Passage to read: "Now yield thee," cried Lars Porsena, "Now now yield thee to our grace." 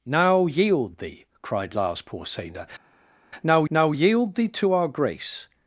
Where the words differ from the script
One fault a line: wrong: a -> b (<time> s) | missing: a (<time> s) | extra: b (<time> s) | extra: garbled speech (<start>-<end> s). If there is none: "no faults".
no faults